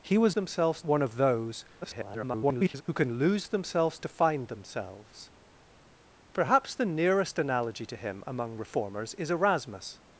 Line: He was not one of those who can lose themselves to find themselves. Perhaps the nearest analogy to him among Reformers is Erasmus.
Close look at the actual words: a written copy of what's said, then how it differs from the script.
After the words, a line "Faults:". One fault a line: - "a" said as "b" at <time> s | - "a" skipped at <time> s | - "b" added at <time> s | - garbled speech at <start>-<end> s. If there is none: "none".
He was themselves one of those [garbled] who can lose themselves to find themselves. Perhaps the nearest analogy to him among Reformers is Erasmus.
Faults:
- "not" said as "themselves" at 0.3 s
- garbled speech at 1.8-2.8 s